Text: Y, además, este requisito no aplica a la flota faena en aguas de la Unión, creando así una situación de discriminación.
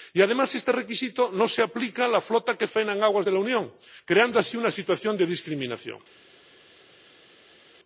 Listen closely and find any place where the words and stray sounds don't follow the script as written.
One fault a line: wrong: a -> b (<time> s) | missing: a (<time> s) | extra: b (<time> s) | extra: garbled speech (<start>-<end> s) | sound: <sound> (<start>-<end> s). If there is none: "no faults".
extra: se (1.5 s)
extra: que (2.6 s)